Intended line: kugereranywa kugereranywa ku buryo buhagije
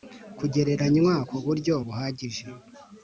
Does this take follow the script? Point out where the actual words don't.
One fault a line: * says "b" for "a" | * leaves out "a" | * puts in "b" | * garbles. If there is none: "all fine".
* leaves out "kugereranywa"